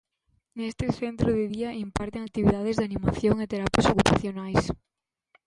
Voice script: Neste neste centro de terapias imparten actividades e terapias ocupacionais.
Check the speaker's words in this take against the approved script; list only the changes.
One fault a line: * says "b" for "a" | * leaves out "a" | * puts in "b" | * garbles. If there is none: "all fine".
* leaves out "neste"
* says "día" for "terapias"
* puts in "de animación"